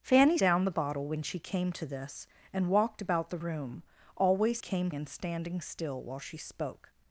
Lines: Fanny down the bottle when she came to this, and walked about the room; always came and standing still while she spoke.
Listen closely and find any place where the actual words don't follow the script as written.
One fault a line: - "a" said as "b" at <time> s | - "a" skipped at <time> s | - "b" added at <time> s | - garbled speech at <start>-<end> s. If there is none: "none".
none